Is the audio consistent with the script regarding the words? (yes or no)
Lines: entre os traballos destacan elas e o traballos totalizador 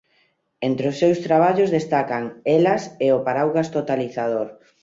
no